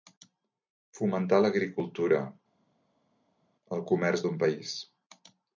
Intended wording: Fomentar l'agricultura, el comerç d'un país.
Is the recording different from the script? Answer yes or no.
no